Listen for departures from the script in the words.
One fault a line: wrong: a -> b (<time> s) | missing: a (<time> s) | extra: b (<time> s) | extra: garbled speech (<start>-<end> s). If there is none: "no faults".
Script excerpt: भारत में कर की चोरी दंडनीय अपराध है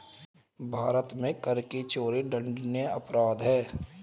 no faults